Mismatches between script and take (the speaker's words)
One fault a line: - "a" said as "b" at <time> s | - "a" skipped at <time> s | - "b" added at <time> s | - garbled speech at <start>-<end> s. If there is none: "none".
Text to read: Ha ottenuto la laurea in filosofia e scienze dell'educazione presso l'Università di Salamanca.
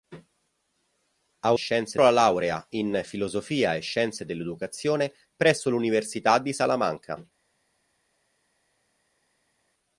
- "ottenuto" said as "scienze" at 1.5 s